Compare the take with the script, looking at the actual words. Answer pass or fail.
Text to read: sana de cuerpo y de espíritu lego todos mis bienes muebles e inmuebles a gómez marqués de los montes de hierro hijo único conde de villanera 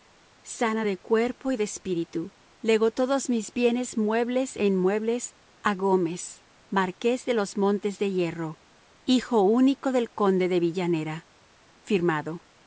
fail